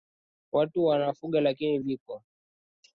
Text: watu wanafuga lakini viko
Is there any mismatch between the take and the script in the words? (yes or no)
no